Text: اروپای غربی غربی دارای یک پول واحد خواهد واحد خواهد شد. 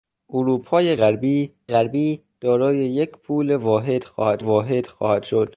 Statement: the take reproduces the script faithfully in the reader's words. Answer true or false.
true